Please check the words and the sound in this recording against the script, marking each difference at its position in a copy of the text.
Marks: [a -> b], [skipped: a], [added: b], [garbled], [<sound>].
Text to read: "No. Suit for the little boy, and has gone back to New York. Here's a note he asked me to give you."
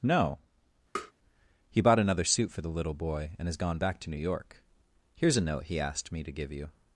"No. [tap] [added: He bought another] Suit for the little boy, and has gone back to New York. Here's a note he asked me to give you."